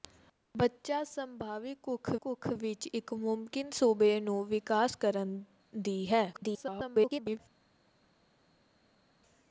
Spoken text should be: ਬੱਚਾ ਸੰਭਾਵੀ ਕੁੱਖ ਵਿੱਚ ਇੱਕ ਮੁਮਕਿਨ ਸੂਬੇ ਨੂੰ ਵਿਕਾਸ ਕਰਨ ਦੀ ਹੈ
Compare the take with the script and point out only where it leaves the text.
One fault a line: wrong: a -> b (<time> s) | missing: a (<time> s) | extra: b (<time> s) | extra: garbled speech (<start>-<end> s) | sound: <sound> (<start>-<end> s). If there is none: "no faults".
extra: ਕੁੱਖ (2.2 s)
extra: garbled speech (6.3-7.4 s)